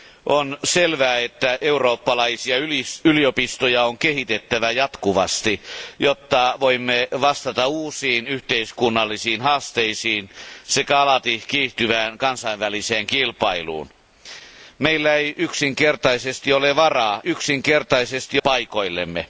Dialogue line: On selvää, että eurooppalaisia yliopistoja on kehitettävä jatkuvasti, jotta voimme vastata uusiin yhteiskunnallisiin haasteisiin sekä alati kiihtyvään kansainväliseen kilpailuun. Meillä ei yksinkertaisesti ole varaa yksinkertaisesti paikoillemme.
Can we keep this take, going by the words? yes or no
yes